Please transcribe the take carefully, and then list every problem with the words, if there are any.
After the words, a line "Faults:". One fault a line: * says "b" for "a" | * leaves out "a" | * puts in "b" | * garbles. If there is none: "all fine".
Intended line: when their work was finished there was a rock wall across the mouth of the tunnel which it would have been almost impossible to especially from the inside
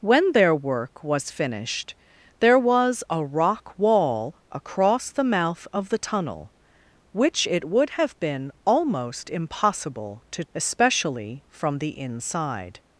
when their work was finished there was a rock wall across the mouth of the tunnel which it would have been almost impossible to especially from the inside
Faults:
all fine